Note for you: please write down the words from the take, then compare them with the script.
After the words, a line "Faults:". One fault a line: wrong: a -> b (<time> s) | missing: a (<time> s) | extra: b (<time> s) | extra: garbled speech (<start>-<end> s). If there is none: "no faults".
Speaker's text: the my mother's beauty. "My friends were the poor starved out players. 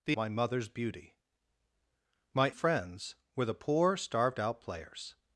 the my mother's beauty. "My friends were the poor starved out players.
Faults:
no faults